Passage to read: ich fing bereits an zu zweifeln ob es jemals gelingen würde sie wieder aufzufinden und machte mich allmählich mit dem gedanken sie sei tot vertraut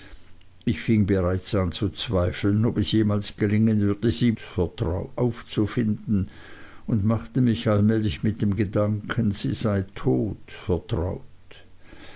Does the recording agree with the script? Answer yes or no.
no